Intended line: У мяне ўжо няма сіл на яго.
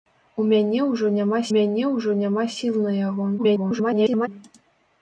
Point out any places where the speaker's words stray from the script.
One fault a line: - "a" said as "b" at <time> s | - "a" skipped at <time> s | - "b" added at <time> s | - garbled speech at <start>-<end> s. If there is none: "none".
- "мяне ўжо няма" added at 1.5 s
- garbled speech at 3.4-4.3 s